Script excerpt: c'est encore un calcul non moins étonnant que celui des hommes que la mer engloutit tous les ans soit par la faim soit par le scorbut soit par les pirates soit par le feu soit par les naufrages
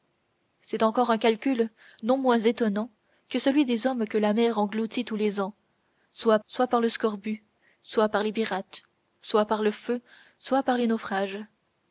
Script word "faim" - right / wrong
wrong